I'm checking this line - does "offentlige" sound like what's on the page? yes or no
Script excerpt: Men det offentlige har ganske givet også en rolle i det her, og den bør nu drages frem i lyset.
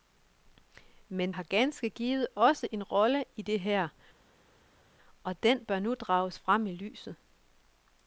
no